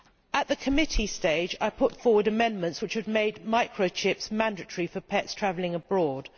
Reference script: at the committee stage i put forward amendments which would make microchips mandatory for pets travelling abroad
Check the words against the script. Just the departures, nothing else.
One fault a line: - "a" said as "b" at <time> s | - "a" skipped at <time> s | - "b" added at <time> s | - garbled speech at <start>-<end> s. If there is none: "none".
none